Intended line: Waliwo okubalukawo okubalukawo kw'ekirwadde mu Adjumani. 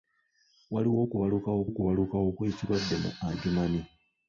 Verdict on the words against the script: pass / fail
pass